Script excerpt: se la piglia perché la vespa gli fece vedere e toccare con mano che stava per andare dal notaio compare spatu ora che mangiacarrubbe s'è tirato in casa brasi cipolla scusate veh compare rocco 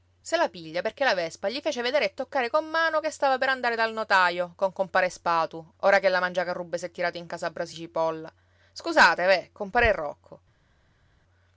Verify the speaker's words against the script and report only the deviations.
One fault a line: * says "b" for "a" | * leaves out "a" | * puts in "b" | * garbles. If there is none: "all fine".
* puts in "con"
* puts in "la"